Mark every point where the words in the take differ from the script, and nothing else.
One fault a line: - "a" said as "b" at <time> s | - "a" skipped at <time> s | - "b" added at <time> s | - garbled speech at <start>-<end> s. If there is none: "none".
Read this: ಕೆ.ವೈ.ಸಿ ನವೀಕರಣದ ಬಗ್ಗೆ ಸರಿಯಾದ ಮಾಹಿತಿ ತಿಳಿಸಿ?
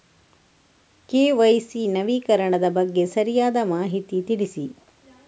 none